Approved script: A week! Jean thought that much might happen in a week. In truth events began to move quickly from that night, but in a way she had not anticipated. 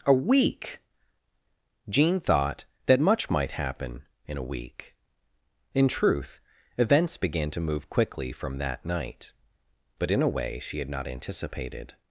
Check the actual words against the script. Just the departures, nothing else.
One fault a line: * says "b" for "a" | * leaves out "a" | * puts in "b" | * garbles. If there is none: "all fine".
all fine